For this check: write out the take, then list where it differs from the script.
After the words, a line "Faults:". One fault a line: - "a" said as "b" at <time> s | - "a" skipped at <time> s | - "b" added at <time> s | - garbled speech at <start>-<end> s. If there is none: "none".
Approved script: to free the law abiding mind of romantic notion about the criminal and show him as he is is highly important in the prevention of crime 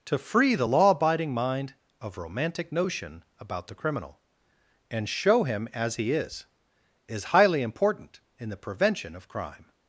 to free the law abiding mind of romantic notion about the criminal and show him as he is is highly important in the prevention of crime
Faults:
none